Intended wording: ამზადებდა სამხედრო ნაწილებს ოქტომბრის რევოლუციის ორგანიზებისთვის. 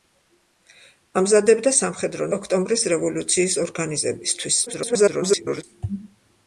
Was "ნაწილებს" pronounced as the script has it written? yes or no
no